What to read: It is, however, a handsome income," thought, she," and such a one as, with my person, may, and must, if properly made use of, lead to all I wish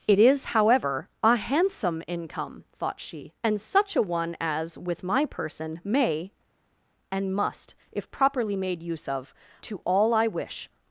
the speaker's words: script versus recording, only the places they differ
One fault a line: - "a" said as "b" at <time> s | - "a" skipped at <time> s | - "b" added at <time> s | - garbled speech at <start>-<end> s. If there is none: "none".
- "lead" skipped at 9.3 s